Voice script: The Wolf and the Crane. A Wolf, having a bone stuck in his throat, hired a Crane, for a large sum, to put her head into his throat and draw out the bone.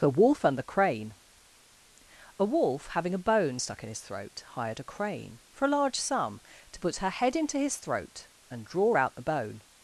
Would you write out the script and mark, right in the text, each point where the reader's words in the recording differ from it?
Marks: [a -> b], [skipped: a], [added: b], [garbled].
The Wolf and the Crane. A Wolf, having a bone stuck in his throat, hired a Crane, for a large sum, to put her head into his throat and draw out the bone.